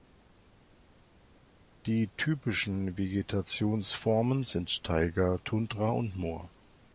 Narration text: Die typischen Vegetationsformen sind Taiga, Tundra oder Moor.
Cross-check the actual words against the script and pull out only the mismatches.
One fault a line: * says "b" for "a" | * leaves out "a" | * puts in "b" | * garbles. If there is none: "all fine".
* says "und" for "oder"